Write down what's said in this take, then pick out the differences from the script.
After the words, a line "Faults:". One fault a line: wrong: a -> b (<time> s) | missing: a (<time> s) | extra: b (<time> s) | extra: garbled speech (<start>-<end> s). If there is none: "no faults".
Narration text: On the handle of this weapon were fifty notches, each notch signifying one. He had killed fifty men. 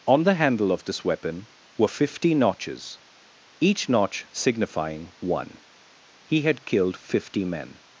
On the handle of this weapon were fifty notches, each notch signifying one. He had killed fifty men.
Faults:
no faults